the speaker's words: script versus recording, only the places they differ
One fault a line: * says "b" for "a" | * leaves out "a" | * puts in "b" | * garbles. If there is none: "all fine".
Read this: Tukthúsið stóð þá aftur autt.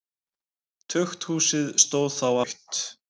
* leaves out "aftur"